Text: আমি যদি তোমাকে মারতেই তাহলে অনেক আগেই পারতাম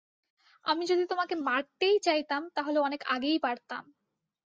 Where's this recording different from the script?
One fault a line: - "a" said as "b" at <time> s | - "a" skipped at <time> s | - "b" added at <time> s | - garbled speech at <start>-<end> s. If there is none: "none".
- "চাইতাম" added at 2.0 s